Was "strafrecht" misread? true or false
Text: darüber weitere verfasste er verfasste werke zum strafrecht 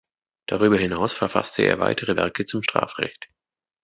false